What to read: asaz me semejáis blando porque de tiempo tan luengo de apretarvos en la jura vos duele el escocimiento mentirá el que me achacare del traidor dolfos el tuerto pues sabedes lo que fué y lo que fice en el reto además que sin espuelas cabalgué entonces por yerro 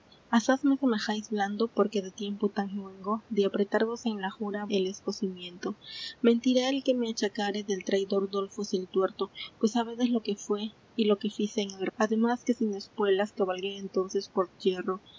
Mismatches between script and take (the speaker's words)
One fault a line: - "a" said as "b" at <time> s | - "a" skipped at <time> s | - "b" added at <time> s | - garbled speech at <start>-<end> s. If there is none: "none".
- "vos duele" skipped at 4.7 s
- "reto" skipped at 11.9 s